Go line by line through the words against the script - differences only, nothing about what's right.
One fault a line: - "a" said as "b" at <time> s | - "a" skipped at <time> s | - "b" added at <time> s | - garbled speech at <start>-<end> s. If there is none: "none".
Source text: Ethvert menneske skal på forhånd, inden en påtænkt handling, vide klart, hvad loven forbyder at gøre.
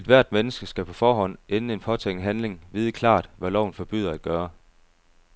none